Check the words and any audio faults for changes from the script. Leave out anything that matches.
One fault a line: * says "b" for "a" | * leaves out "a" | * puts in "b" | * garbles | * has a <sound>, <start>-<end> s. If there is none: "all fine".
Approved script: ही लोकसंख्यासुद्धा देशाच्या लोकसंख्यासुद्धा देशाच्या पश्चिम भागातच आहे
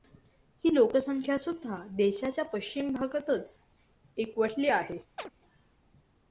* leaves out "लोकसंख्यासुद्धा देशाच्या"
* puts in "एकवटली"
* has a chirp, 5.2-5.3 s